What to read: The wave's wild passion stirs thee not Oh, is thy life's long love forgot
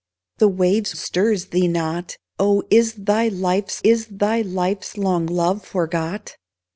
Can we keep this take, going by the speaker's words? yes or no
no